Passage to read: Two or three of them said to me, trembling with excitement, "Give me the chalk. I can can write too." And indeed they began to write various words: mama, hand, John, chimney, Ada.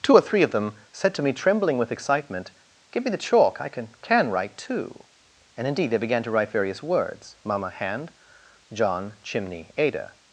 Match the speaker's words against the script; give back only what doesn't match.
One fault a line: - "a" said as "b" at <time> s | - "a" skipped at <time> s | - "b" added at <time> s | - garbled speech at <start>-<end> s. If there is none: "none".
none